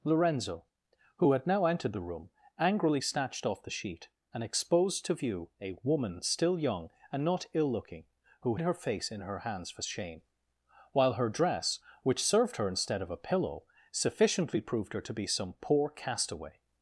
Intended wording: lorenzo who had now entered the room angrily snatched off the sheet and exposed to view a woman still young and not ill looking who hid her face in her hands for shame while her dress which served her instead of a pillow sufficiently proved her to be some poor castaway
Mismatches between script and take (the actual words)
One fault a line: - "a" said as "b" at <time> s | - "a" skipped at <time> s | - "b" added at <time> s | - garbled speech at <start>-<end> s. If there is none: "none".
- "hid" skipped at 8.6 s